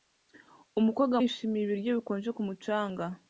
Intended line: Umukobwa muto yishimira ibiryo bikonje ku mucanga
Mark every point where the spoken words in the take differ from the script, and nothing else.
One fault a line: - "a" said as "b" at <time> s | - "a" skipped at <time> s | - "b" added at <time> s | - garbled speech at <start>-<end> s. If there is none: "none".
- "muto" skipped at 1.1 s